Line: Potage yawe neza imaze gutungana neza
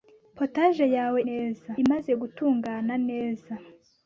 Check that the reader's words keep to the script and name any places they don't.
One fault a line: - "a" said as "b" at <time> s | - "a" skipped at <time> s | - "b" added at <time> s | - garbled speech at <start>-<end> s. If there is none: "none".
none